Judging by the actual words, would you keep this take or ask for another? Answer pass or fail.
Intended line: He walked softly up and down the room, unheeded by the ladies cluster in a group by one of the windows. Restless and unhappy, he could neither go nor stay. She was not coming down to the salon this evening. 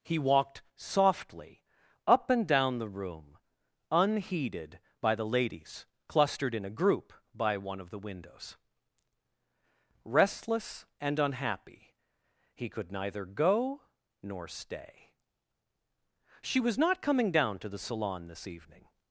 fail